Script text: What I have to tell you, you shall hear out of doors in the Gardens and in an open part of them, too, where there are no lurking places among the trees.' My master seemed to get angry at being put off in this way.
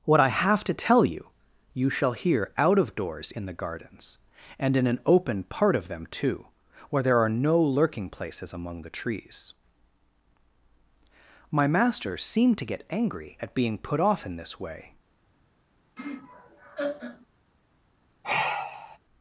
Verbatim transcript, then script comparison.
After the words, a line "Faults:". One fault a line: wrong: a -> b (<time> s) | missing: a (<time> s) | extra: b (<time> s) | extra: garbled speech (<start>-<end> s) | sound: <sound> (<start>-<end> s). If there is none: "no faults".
What I have to tell you, you shall hear out of doors in the Gardens and in an open part of them, too, where there are no lurking places among the trees.' My master seemed to get angry at being put off in this way.
Faults:
sound: laugh (16.0-17.3 s)
sound: sigh (18.2-19.0 s)